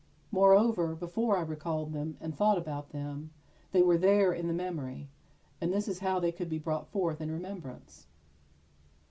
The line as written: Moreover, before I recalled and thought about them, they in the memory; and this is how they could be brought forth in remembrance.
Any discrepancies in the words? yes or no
yes